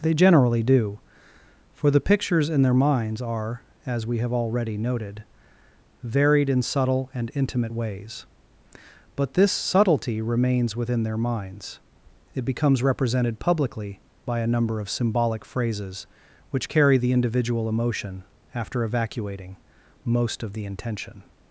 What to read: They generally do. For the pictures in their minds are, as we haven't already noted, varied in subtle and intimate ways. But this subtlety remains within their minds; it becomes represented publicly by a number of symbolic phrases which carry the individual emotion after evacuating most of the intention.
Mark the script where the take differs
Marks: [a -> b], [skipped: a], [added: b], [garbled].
They generally do. For the pictures in their minds are, as we [haven't -> have] already noted, varied in subtle and intimate ways. But this subtlety remains within their minds; it becomes represented publicly by a number of symbolic phrases which carry the individual emotion after evacuating most of the intention.